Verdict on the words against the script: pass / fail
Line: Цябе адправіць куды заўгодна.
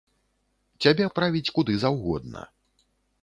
pass